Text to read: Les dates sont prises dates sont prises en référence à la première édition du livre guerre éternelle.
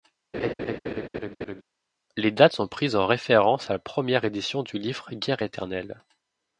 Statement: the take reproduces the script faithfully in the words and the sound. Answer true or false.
false